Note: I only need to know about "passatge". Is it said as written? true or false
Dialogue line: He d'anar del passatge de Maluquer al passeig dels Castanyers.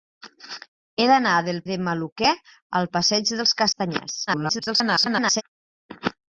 false